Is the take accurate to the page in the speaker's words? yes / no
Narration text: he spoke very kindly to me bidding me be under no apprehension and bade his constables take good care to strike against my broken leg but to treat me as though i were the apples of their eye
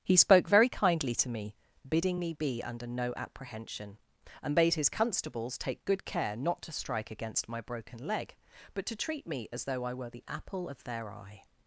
no